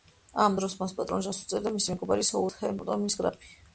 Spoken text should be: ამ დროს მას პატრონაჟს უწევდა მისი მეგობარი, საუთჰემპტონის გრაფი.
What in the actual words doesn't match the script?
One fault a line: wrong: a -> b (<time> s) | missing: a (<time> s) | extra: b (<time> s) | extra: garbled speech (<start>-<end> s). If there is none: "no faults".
no faults